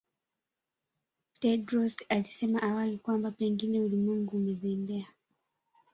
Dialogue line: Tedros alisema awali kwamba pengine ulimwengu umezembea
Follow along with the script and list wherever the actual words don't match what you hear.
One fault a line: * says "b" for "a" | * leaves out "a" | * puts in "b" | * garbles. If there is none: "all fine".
all fine